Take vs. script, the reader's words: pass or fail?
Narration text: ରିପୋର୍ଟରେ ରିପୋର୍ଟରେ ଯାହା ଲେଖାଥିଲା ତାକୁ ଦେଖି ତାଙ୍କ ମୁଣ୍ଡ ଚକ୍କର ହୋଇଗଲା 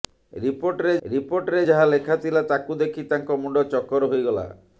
pass